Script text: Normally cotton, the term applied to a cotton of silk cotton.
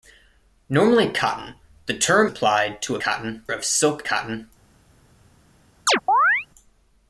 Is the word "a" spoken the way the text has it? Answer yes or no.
yes